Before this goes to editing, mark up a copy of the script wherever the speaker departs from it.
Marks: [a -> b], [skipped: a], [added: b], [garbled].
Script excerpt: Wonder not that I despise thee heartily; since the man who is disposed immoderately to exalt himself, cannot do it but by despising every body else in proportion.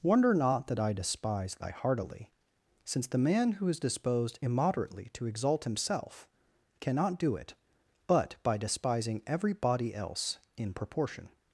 Wonder not that I despise [thee -> thy] heartily; since the man who is disposed immoderately to exalt himself, cannot do it but by despising every body else in proportion.